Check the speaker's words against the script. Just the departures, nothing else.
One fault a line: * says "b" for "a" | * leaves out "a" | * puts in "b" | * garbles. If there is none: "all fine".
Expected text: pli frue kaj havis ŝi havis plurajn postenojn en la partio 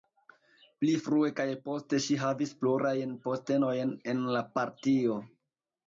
* says "poste" for "havis"